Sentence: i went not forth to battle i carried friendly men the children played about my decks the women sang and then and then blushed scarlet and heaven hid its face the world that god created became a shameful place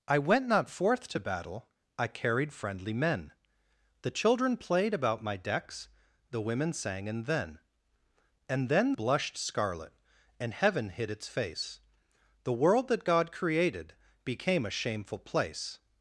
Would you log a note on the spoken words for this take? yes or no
no